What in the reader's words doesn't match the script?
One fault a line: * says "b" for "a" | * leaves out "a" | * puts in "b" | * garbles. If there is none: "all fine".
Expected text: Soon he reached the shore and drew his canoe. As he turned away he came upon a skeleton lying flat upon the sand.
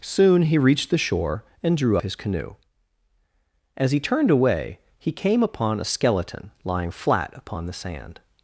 all fine